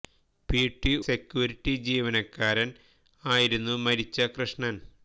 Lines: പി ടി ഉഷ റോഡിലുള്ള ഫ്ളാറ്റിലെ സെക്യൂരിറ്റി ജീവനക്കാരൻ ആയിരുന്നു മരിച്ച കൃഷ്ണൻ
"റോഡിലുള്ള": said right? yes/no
no